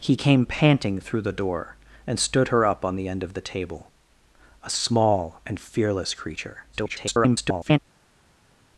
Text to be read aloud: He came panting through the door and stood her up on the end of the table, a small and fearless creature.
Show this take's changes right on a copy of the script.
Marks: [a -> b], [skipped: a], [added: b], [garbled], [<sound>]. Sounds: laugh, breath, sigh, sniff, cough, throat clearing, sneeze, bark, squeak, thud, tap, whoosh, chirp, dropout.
He came panting through the door and stood her up on the end of the table, a small and fearless creature. [garbled]